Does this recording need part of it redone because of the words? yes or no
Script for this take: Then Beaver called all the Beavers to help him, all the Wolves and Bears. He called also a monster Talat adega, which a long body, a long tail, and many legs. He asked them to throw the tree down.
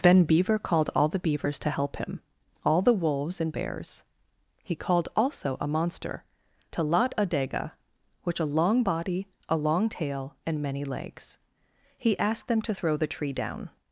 no